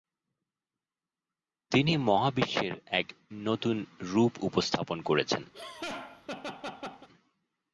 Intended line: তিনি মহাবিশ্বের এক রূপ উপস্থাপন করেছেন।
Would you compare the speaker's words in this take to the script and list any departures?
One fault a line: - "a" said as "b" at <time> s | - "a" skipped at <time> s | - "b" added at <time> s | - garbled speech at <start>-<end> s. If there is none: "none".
- "নতুন" added at 3.4 s